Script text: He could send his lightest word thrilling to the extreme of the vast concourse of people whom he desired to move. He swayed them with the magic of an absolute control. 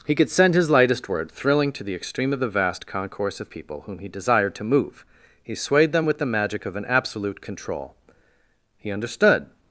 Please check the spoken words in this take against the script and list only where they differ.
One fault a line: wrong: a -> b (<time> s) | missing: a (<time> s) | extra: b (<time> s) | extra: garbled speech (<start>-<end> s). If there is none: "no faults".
extra: He understood (8.8 s)